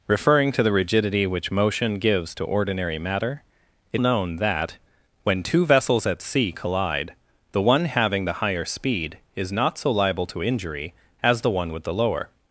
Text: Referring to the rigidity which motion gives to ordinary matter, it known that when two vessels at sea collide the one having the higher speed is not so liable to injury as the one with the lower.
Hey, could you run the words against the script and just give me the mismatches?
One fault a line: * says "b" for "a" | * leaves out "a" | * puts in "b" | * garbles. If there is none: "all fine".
all fine